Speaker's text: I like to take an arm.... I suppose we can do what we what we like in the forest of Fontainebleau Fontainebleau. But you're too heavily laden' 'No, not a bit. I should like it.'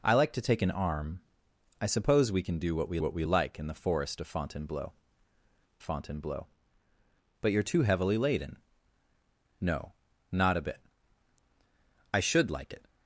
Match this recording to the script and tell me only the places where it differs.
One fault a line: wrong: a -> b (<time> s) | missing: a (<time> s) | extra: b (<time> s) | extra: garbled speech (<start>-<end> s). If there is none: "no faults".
no faults